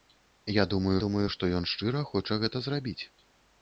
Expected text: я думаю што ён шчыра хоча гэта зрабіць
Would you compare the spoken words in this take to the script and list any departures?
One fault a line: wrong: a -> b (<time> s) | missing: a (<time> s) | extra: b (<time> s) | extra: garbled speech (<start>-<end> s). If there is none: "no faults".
extra: думаю (1.0 s)